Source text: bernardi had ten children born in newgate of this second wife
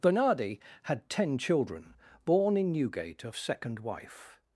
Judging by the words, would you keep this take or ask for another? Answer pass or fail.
fail